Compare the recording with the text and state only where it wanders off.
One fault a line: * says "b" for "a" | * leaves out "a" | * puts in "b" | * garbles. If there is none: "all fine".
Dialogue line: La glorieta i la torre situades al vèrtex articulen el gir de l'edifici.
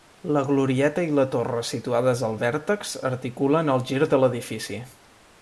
all fine